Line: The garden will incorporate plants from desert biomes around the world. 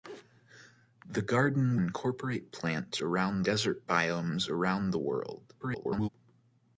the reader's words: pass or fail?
fail